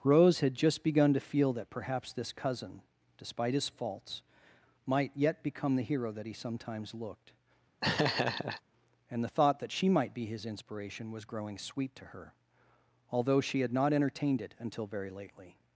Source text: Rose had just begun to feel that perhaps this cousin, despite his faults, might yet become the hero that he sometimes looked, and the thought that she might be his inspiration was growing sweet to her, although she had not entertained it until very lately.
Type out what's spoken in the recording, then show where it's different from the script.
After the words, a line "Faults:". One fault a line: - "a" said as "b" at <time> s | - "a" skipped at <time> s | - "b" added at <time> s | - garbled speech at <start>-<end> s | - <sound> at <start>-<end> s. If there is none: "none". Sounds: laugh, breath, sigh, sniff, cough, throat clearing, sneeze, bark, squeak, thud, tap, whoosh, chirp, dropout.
Rose had just begun to feel that perhaps this cousin, despite his faults, might yet become the hero that he sometimes looked, and the thought that she might be his inspiration was growing sweet to her, although she had not entertained it until very lately.
Faults:
- laugh at 7.8-8.6 s